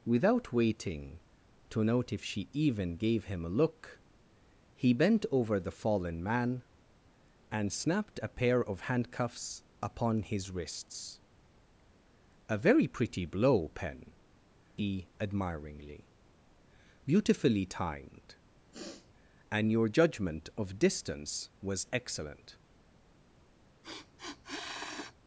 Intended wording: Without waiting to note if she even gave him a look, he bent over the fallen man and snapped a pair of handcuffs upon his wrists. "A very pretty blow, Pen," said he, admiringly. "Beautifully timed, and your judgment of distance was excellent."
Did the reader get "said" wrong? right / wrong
wrong